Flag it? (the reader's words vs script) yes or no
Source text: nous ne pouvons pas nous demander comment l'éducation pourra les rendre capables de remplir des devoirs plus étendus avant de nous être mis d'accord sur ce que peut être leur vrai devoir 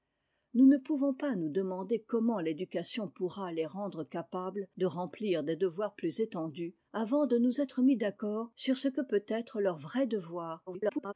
yes